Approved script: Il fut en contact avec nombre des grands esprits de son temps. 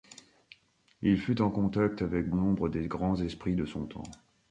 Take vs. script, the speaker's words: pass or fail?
pass